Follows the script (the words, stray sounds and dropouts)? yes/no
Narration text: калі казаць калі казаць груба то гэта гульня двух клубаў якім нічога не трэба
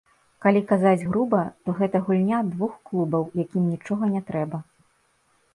no